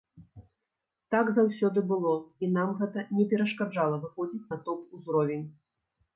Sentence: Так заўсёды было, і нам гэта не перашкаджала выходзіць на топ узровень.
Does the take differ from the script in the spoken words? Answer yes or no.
no